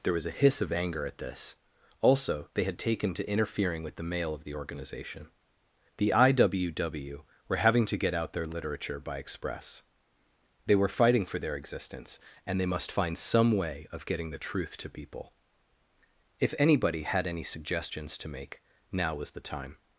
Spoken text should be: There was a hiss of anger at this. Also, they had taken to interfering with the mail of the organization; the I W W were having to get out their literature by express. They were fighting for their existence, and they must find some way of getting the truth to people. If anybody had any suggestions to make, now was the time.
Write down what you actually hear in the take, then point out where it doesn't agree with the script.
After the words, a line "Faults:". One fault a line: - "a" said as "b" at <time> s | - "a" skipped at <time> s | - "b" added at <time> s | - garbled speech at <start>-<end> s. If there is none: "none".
There was a hiss of anger at this. Also, they had taken to interfering with the mail of the organization; the I W W were having to get out their literature by express. They were fighting for their existence, and they must find some way of getting the truth to people. If anybody had any suggestions to make, now was the time.
Faults:
none